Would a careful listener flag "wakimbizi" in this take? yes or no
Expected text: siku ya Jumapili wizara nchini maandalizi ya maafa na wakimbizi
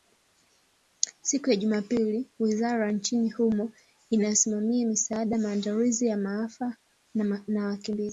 no